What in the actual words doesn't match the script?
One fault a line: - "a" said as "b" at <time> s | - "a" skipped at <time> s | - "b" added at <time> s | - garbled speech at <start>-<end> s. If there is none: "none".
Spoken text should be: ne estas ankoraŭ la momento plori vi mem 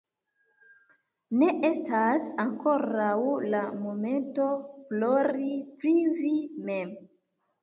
- "pri" added at 5.8 s